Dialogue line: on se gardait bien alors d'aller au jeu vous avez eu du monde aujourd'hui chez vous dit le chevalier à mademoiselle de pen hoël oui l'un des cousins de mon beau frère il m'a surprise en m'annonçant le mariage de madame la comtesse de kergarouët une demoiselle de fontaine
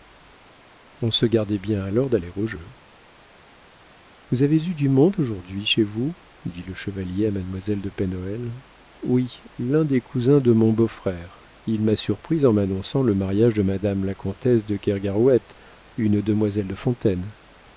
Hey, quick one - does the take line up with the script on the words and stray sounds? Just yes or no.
yes